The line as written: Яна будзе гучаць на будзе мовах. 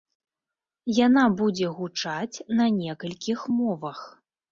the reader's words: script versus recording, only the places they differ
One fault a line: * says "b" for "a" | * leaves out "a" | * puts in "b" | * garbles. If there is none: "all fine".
* says "некалькіх" for "будзе"